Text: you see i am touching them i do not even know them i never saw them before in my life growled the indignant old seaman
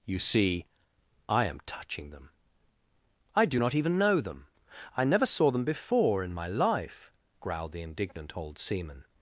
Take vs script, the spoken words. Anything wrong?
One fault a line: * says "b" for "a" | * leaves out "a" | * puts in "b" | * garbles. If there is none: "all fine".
all fine